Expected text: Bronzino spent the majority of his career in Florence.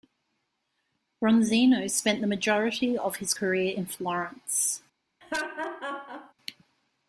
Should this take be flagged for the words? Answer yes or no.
no